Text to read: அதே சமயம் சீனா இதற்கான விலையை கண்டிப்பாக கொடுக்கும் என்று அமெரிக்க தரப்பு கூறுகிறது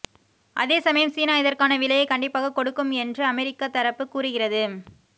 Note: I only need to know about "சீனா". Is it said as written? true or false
true